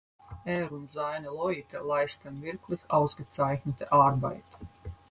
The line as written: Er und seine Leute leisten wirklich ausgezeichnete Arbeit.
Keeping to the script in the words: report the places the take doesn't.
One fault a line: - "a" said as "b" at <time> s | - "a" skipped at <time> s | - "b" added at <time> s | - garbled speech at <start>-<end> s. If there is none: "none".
none